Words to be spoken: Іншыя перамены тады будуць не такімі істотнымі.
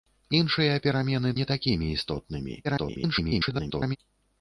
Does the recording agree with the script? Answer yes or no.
no